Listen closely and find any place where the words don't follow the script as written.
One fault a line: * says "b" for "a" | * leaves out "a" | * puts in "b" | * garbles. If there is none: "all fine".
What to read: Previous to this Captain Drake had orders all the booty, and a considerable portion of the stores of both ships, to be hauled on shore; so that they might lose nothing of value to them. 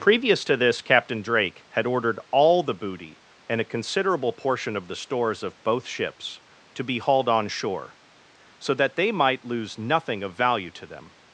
* says "ordered" for "orders"